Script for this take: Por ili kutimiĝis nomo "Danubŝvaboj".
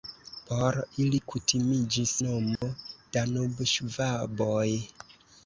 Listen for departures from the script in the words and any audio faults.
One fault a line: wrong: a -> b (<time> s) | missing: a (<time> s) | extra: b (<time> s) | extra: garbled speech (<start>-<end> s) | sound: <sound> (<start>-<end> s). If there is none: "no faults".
sound: dropout (2.6-2.6 s)